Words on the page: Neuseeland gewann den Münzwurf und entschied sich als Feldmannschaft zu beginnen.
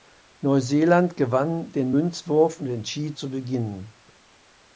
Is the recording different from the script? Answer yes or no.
yes